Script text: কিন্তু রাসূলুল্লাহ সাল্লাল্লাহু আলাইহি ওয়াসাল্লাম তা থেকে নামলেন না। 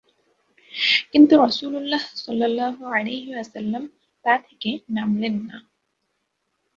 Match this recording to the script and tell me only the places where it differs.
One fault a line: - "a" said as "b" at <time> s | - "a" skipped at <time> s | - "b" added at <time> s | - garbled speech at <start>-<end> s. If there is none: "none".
none